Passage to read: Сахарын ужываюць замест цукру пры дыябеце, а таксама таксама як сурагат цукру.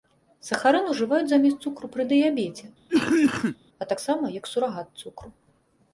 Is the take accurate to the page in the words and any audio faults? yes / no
no